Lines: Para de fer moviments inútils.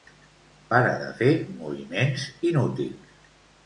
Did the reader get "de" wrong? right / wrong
right